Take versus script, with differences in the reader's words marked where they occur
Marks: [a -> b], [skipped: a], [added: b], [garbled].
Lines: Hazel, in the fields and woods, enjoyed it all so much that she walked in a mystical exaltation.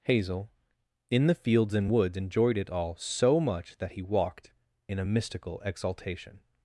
Hazel, in the fields and woods, enjoyed it all so much that [she -> he] walked in a mystical exaltation.